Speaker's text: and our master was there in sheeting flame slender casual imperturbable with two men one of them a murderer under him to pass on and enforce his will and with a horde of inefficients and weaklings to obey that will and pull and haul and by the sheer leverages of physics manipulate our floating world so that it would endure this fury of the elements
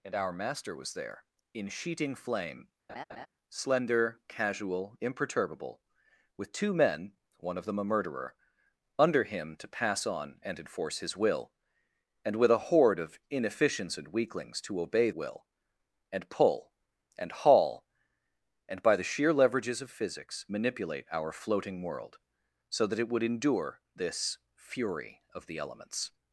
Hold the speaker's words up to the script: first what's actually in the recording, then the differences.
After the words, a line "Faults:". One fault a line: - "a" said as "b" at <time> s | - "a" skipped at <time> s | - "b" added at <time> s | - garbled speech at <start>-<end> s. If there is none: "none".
and our master was there in sheeting flame slender casual imperturbable with two men one of them a murderer under him to pass on and enforce his will and with a horde of inefficients and weaklings to obey will and pull and haul and by the sheer leverages of physics manipulate our floating world so that it would endure this fury of the elements
Faults:
- "that" skipped at 15.1 s